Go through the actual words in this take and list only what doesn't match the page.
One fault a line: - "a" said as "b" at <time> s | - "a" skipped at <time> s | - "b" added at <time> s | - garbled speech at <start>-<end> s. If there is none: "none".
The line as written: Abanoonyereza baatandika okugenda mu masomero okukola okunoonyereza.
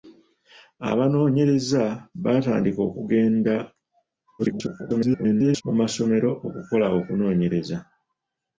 - garbled speech at 4.4-5.6 s